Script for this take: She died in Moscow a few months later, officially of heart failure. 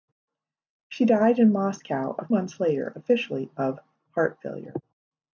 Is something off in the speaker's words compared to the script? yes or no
yes